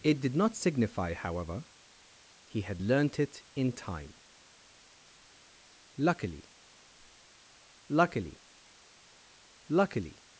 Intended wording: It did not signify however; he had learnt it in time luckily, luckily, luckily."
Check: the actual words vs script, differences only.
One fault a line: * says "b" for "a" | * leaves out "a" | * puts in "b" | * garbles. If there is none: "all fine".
all fine